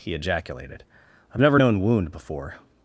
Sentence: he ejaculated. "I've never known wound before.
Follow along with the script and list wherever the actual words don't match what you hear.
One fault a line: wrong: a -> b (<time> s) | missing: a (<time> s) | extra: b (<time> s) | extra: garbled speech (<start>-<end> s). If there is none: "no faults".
no faults